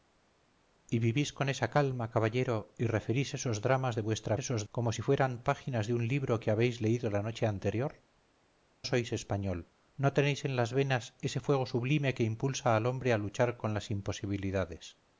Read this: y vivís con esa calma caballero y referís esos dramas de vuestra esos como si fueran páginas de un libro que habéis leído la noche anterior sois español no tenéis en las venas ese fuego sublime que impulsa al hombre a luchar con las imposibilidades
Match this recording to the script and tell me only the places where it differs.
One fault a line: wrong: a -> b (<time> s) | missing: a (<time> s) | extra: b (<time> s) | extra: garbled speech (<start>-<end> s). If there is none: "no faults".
no faults